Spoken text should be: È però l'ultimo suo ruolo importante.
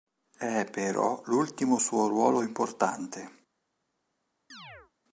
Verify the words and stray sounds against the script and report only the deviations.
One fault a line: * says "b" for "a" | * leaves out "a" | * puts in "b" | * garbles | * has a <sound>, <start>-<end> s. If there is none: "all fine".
* has a chirp, 4.5-4.9 s